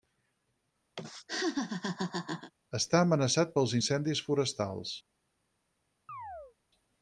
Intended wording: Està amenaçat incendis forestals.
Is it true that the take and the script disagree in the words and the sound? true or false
true